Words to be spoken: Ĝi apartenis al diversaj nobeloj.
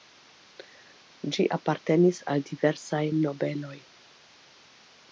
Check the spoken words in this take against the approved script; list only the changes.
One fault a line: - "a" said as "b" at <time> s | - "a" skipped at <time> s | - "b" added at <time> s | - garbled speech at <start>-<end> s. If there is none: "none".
none